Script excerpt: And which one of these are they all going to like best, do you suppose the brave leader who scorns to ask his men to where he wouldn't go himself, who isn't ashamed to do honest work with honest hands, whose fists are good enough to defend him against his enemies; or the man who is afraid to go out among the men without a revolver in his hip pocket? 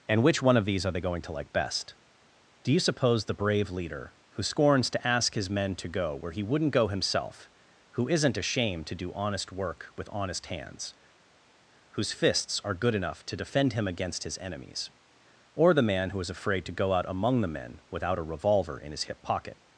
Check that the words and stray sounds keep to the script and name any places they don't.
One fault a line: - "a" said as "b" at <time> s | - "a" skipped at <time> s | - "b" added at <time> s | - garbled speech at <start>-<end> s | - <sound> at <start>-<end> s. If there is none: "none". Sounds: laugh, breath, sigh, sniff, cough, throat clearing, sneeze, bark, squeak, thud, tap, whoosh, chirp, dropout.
- "all" skipped at 1.0 s
- "go" added at 5.9 s